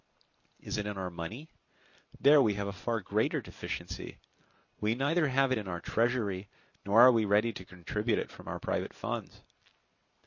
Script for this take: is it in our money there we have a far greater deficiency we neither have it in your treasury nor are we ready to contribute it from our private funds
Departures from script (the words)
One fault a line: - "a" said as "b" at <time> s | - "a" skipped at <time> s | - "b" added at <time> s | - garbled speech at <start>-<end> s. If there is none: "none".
- "your" said as "our" at 5.7 s